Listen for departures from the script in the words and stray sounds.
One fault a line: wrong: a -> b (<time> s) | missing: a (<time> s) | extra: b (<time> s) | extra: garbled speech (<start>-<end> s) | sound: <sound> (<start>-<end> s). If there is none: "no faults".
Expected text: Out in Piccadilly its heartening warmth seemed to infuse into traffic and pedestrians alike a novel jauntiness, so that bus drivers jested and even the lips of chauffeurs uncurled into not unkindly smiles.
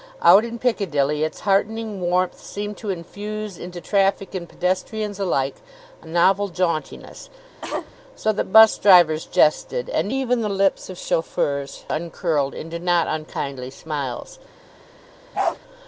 sound: cough (7.6-7.9 s)
sound: bark (15.3-15.6 s)